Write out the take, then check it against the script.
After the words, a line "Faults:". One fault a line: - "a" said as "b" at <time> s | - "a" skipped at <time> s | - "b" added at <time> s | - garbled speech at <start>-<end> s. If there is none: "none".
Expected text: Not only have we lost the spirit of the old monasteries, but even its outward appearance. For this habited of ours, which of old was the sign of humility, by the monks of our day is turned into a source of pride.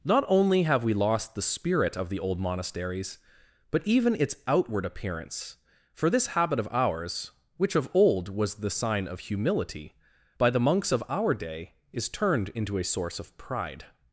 Not only have we lost the spirit of the old monasteries, but even its outward appearance. For this habit of ours, which of old was the sign of humility, by the monks of our day is turned into a source of pride.
Faults:
- "habited" said as "habit" at 6.3 s